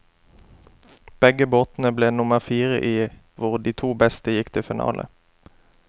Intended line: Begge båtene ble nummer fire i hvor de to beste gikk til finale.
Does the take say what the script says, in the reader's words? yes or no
yes